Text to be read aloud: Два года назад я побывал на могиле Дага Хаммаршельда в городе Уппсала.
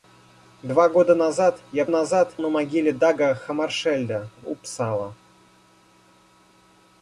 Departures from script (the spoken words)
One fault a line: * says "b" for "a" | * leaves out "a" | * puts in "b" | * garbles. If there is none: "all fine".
* says "назад" for "побывал"
* leaves out "городе"